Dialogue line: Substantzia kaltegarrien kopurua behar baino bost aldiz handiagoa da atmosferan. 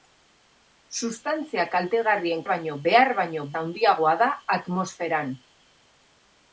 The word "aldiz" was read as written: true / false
false